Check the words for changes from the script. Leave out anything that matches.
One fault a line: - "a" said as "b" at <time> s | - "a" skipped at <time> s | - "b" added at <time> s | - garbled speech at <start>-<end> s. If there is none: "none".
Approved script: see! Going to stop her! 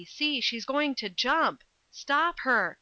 - "She's" added at 0.4 s
- "jump" added at 1.1 s